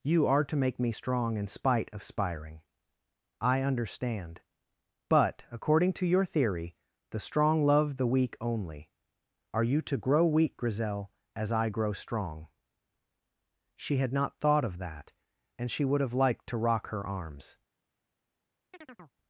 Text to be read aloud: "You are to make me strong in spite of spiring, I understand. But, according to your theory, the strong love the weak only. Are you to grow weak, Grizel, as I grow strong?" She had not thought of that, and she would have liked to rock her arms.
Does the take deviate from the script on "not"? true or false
false